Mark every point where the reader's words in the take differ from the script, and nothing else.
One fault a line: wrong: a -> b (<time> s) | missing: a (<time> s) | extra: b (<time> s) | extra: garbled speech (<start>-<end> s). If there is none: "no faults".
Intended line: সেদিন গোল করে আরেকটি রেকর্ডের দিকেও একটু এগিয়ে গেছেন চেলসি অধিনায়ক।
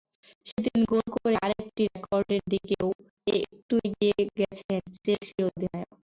no faults